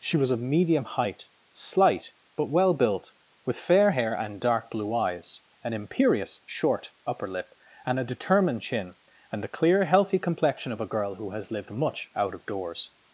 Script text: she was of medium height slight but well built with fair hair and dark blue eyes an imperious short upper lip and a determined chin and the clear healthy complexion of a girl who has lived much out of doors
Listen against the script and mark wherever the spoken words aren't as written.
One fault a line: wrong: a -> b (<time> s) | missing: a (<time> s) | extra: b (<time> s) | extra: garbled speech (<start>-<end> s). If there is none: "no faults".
no faults